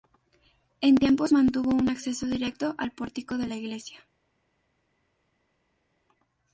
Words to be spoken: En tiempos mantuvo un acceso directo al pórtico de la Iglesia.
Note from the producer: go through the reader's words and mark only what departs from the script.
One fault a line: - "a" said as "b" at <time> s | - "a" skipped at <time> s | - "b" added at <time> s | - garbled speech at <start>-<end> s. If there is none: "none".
none